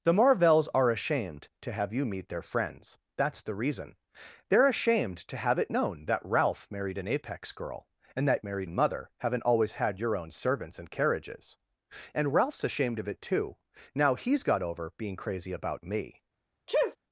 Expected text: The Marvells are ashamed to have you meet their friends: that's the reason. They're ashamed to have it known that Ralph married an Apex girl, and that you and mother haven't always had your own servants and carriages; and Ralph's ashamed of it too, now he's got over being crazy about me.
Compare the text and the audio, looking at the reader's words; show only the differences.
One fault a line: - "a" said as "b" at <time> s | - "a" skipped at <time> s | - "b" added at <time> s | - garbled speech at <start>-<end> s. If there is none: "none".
- "you" said as "married" at 8.4 s